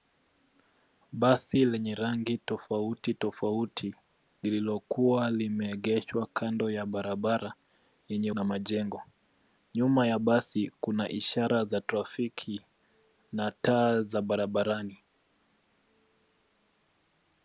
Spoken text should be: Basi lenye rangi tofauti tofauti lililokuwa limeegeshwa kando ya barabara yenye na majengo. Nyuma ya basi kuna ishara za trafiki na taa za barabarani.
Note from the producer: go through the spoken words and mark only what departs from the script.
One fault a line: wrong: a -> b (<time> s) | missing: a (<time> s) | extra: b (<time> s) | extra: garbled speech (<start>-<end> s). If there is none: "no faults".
no faults